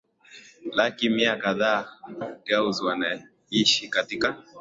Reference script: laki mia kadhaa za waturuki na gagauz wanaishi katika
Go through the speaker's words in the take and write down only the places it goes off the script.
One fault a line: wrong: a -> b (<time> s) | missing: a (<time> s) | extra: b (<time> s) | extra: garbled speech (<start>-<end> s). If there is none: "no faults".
missing: za waturuki na (2.0 s)